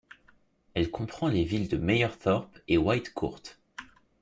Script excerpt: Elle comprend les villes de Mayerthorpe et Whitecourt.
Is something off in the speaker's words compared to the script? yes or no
no